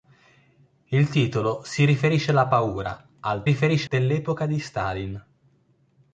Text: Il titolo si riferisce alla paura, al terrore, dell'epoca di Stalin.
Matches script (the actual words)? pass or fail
fail